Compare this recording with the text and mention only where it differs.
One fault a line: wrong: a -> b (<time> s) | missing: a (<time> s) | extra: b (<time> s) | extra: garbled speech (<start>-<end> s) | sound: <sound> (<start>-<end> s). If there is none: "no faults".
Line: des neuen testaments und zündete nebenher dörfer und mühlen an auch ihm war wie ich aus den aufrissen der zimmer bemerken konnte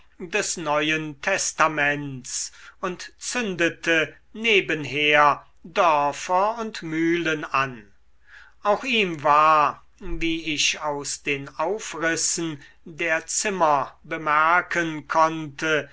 no faults